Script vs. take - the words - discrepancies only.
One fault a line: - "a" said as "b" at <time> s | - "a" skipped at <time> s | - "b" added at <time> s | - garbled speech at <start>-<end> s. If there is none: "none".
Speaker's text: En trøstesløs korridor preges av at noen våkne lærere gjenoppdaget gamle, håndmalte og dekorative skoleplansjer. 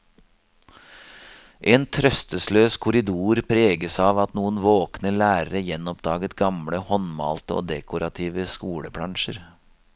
none